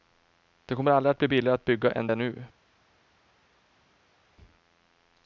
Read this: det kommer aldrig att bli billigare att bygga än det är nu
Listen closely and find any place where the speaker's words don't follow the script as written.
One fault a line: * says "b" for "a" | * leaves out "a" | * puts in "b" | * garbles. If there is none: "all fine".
* leaves out "det"